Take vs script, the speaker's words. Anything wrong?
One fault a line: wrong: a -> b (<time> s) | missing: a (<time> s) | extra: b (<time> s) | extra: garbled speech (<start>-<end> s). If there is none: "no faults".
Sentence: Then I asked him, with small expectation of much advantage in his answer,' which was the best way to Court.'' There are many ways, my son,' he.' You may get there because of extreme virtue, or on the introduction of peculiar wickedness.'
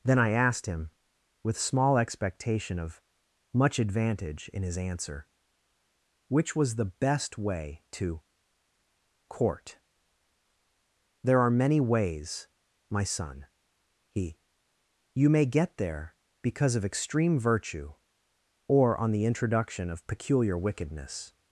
no faults